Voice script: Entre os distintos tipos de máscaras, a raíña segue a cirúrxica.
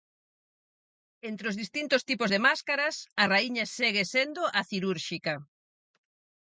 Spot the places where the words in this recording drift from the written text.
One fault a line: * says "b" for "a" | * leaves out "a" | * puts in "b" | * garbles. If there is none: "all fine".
* puts in "sendo"